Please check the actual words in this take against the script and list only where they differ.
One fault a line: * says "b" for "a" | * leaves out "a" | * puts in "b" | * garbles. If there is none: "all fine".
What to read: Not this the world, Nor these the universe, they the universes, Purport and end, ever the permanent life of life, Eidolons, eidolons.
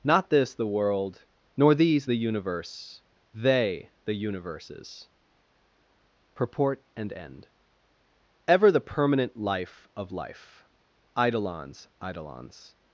all fine